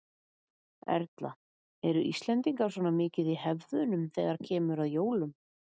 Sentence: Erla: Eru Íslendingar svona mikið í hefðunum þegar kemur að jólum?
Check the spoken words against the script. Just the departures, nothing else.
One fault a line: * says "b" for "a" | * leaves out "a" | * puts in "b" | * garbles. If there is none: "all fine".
all fine